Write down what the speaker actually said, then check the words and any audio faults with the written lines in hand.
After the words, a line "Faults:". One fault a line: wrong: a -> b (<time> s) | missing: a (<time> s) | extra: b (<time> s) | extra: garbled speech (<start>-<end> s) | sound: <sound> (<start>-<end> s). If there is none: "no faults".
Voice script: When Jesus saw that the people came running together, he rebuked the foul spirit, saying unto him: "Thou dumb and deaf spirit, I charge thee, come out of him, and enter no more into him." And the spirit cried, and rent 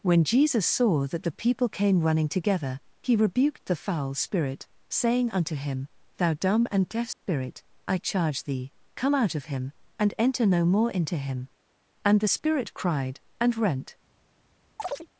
When Jesus saw that the people came running together, he rebuked the foul spirit, saying unto him: "Thou dumb and deaf spirit, I charge thee, come out of him, and enter no more into him." And the spirit cried, and rent
Faults:
sound: dropout (7.1-7.2 s)
sound: chirp (14.8-15.1 s)